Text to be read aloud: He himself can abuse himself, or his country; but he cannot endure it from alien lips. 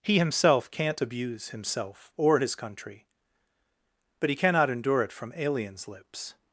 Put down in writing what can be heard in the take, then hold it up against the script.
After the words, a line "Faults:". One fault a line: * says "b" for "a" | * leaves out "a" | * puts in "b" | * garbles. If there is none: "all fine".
He himself can't abuse himself, or his country; but he cannot endure it from aliens lips.
Faults:
* says "can't" for "can"
* says "aliens" for "alien"